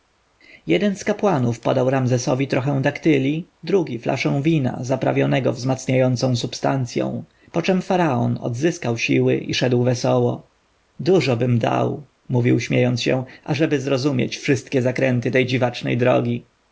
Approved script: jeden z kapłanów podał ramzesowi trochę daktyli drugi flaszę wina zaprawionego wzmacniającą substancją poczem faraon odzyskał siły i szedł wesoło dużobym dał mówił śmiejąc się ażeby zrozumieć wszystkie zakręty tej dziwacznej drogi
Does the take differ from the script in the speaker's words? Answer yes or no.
no